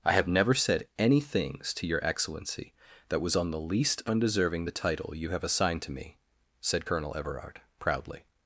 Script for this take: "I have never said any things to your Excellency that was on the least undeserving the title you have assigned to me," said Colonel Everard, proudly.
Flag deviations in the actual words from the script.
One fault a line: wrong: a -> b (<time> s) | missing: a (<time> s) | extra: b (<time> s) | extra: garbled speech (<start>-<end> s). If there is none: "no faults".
no faults